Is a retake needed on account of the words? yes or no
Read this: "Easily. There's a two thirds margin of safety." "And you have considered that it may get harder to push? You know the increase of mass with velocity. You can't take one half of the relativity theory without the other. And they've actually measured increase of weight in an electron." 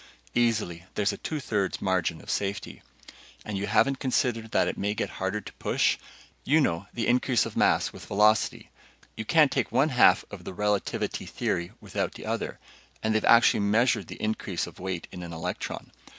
yes